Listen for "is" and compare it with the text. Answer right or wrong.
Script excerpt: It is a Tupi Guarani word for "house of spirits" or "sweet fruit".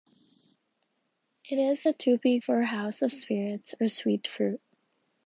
right